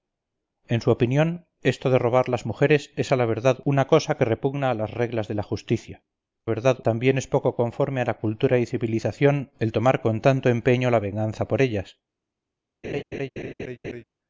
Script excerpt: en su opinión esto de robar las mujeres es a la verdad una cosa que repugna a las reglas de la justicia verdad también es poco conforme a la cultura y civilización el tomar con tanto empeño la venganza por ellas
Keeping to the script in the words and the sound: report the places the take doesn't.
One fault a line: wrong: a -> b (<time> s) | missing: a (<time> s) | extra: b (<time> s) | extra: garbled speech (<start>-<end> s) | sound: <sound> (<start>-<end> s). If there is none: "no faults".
sound: laugh (12.8-14.0 s)